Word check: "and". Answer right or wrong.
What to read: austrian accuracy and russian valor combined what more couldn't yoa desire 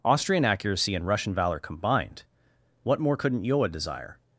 right